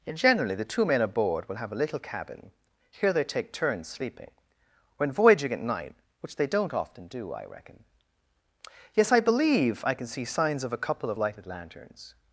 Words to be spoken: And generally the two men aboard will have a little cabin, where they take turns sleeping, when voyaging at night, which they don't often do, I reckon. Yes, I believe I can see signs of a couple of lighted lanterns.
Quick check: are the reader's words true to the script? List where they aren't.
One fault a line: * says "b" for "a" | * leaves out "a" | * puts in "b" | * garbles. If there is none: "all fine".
* says "here" for "where"